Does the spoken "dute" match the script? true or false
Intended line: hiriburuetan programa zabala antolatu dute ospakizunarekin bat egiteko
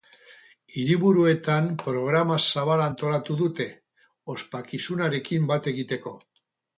true